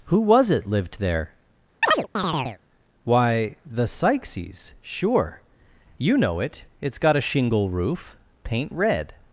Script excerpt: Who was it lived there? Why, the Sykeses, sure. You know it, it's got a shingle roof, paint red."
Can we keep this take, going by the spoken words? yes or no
yes